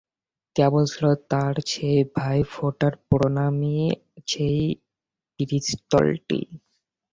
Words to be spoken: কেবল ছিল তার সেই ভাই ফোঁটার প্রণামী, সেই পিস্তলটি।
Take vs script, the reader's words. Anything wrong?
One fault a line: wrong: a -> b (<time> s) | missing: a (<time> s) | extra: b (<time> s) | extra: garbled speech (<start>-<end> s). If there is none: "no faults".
no faults